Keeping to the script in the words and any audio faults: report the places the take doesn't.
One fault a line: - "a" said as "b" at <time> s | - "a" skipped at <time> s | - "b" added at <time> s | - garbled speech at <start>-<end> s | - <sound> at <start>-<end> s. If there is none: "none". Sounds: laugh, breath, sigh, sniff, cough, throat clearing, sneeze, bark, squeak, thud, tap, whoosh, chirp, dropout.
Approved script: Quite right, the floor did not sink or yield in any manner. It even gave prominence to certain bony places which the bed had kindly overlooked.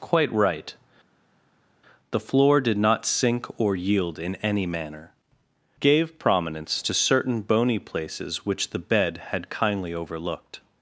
- "It even" skipped at 5.1 s